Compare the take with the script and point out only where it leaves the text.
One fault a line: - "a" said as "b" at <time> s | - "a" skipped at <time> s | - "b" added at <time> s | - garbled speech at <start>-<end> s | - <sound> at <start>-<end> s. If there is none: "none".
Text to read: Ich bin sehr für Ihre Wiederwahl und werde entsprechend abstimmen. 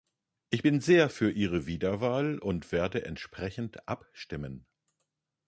none